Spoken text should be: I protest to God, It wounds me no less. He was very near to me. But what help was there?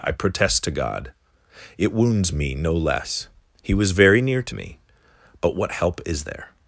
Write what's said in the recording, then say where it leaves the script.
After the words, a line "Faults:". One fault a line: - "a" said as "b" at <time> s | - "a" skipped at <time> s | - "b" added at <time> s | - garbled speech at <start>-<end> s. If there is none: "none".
I protest to God, It wounds me no less. He was very near to me. But what help is there?
Faults:
- "was" said as "is" at 6.1 s